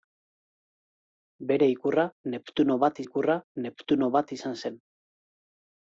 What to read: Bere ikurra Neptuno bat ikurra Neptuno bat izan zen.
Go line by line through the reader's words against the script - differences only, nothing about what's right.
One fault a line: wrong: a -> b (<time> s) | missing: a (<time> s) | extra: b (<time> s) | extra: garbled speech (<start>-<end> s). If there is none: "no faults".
no faults